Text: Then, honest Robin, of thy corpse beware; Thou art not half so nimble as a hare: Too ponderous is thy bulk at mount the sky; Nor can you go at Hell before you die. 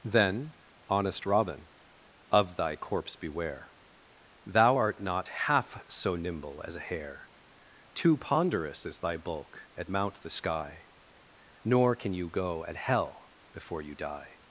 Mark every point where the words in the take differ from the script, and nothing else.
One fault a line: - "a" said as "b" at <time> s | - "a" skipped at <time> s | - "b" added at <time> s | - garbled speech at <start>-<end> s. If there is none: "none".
none